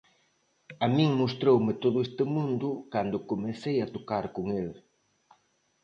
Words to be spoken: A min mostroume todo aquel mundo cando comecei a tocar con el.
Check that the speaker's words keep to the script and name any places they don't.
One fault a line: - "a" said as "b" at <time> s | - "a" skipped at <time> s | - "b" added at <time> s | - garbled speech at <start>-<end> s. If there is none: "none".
- "aquel" said as "este" at 2.1 s